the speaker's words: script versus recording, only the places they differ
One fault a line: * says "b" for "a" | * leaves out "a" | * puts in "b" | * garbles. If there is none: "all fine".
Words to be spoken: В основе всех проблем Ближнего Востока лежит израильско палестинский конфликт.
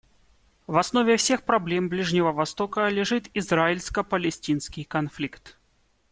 all fine